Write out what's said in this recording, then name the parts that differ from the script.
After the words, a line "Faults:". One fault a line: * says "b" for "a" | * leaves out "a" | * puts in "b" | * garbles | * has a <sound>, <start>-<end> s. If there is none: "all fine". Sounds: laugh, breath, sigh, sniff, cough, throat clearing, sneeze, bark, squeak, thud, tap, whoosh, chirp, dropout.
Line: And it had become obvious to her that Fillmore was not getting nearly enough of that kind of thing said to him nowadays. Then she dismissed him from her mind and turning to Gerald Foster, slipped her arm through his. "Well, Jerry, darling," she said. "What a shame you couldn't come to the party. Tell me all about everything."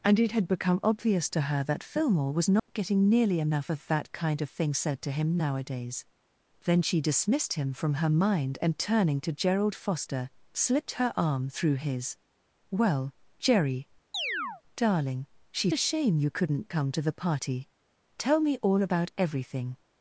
And it had become obvious to her that Fillmore was not getting nearly enough of that kind of thing said to him nowadays. Then she dismissed him from her mind and turning to Gerald Foster, slipped her arm through his. "Well, Jerry, darling," she a shame you couldn't come to the party. Tell me all about everything."
Faults:
* has a dropout, 2.6-2.7 s
* has a chirp, 14.1-14.6 s
* leaves out "said What"